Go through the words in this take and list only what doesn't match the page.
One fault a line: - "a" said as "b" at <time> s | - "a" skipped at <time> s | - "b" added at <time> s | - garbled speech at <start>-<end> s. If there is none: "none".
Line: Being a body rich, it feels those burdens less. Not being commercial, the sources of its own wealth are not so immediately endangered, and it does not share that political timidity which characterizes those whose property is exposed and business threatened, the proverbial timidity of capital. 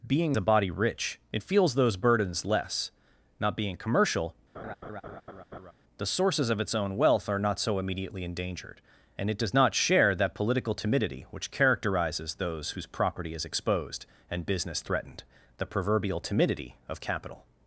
none